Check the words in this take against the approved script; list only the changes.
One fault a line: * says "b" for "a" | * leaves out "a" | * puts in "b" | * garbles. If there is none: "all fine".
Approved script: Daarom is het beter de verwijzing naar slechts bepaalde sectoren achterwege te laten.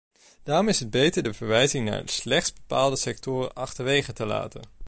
all fine